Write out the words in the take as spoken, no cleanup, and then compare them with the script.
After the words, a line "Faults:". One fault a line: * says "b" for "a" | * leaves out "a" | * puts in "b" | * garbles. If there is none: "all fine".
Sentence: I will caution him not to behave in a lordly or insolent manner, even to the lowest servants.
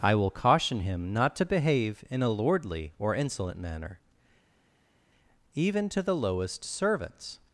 I will caution him not to behave in a lordly or insolent manner, even to the lowest servants.
Faults:
all fine